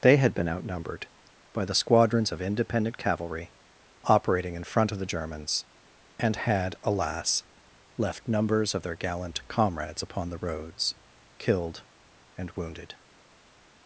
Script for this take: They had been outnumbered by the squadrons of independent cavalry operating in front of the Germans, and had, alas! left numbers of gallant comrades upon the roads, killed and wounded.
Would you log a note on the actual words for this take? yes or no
yes